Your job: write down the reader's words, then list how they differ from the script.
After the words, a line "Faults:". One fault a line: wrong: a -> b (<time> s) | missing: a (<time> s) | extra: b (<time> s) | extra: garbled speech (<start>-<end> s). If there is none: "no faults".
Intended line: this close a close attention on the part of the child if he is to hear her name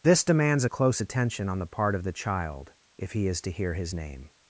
this demands a close attention on the part of the child if he is to hear his name
Faults:
wrong: close -> demands (0.2 s)
wrong: her -> his (3.7 s)